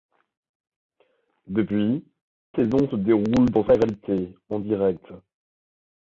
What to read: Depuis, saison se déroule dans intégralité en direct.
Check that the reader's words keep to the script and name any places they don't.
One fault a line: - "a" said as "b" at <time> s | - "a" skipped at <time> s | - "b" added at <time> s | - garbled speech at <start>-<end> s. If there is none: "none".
none